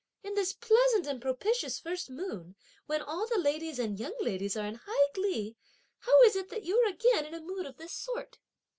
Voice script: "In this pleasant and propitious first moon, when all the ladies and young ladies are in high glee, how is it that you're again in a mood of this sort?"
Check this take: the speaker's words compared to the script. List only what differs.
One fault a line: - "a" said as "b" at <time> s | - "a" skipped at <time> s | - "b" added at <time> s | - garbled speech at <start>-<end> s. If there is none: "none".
none